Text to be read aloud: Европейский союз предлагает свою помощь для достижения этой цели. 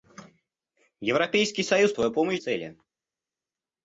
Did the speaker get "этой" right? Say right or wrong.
wrong